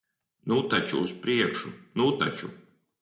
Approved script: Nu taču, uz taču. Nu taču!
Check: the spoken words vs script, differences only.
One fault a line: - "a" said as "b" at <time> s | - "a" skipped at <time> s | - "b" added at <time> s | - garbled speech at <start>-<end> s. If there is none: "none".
- "taču" said as "priekšu" at 1.2 s